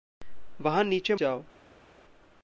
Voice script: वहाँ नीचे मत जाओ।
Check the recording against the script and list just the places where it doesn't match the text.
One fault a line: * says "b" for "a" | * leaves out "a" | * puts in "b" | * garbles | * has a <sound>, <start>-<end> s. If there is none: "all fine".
* leaves out "मत"